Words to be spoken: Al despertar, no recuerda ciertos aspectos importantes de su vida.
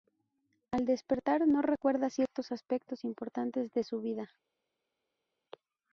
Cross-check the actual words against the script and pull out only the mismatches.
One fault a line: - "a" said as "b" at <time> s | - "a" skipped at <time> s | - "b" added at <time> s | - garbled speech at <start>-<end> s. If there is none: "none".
none